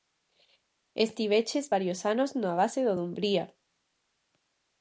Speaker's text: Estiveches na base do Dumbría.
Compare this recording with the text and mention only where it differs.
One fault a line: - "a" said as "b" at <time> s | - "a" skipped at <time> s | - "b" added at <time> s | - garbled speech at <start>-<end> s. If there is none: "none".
- "varios anos" added at 1.7 s